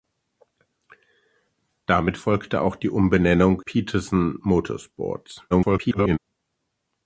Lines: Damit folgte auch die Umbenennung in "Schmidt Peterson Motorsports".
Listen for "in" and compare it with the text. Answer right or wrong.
wrong